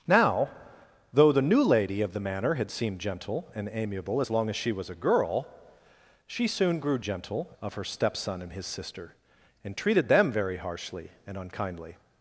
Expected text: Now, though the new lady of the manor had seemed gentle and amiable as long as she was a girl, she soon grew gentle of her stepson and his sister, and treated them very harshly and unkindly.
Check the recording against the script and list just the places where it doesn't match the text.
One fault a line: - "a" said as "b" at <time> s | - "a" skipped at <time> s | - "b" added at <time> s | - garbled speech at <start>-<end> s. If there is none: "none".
none